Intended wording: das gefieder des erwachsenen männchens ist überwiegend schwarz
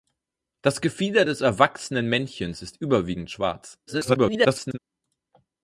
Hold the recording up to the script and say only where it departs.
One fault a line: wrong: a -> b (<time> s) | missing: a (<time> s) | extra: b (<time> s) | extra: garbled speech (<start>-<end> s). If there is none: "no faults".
extra: garbled speech (3.9-4.8 s)